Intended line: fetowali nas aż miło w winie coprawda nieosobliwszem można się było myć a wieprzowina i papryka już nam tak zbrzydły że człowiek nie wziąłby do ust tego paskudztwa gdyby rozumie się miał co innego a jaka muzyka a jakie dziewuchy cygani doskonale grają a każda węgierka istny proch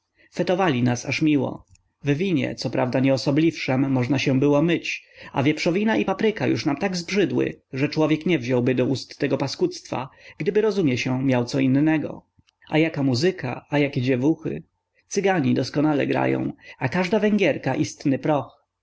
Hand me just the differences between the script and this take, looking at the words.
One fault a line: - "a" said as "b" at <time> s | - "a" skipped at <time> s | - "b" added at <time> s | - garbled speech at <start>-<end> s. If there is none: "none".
none